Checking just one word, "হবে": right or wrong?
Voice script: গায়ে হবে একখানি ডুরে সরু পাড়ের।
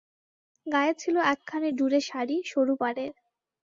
wrong